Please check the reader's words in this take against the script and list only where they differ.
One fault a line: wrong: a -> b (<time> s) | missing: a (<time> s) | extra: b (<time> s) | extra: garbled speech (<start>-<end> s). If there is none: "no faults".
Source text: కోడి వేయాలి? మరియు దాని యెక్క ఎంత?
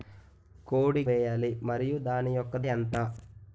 no faults